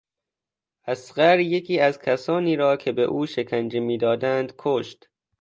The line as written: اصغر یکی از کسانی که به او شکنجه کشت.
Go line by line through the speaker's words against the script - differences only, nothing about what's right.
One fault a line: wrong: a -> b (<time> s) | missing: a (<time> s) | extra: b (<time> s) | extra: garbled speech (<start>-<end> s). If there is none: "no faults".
extra: را (2.5 s)
extra: میدادند (3.8 s)